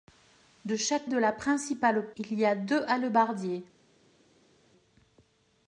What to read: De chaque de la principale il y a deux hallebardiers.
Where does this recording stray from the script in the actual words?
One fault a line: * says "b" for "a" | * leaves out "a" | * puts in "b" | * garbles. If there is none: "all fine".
all fine